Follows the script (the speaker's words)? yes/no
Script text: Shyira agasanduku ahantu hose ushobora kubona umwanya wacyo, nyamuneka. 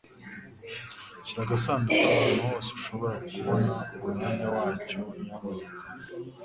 yes